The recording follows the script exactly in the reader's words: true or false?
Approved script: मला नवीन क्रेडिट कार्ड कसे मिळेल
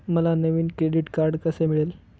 true